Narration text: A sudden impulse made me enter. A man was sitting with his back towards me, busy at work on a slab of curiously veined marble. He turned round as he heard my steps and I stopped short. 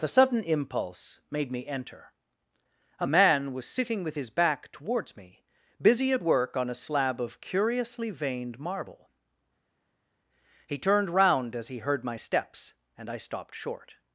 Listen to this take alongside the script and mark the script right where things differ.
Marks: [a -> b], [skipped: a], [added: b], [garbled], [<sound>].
[A -> The] sudden impulse made me enter. A man was sitting with his back towards me, busy at work on a slab of curiously veined marble. He turned round as he heard my steps and I stopped short.